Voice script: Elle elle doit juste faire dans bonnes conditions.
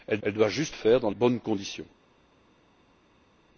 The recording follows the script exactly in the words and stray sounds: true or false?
true